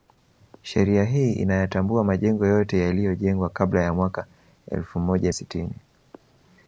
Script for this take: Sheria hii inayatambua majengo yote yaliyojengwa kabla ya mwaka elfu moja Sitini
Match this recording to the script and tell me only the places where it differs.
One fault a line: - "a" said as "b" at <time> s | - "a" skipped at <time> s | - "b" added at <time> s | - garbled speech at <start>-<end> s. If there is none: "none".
none